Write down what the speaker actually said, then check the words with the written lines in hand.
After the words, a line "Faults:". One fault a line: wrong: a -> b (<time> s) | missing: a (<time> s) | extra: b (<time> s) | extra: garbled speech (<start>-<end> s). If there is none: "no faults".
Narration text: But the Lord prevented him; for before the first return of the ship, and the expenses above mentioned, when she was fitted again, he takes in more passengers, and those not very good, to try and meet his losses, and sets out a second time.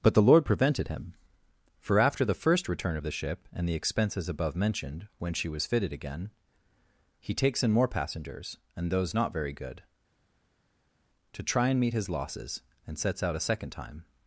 But the Lord prevented him; for after the first return of the ship, and the expenses above mentioned, when she was fitted again, he takes in more passengers, and those not very good, to try and meet his losses, and sets out a second time.
Faults:
wrong: before -> after (2.0 s)